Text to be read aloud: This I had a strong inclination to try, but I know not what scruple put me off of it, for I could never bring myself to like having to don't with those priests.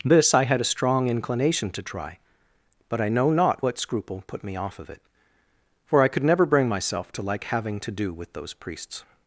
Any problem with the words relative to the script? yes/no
yes